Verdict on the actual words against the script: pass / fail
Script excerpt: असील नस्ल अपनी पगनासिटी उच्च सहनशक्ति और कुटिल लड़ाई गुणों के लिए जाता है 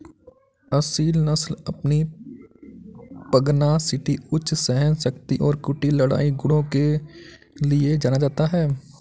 fail